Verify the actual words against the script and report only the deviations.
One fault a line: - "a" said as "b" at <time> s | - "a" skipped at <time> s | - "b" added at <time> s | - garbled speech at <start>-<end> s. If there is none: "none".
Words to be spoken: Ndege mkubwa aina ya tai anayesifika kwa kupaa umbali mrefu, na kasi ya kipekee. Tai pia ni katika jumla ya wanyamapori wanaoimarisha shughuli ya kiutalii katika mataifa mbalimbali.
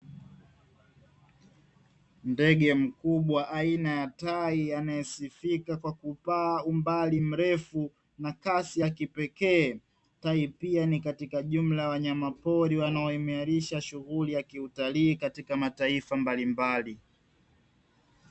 none